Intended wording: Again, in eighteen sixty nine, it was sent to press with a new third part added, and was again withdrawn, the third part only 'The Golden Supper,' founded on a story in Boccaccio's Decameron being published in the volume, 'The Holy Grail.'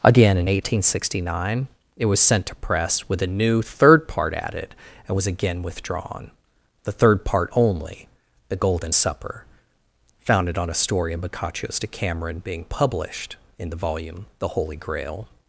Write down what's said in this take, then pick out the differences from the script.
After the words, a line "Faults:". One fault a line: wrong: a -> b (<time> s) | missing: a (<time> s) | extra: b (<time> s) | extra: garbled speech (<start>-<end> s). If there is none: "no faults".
Again, in eighteen sixty nine, it was sent to press with a new third part added, and was again withdrawn, the third part only 'The Golden Supper,' founded on a story in Boccaccio's Decameron being published in the volume, 'The Holy Grail.'
Faults:
no faults